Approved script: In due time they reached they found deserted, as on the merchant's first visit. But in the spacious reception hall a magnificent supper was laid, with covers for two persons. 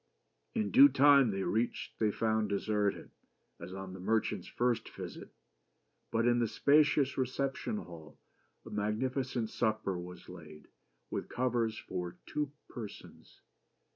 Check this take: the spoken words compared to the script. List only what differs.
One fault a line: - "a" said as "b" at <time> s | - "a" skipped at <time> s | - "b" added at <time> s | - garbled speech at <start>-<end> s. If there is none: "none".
none